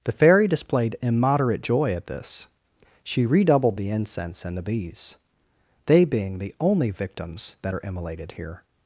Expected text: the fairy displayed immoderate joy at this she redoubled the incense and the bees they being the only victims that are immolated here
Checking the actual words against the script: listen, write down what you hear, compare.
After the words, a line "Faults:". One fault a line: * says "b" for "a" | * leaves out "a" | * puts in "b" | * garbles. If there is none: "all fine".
the fairy displayed immoderate joy at this she redoubled the incense and the bees they being the only victims that are immolated here
Faults:
all fine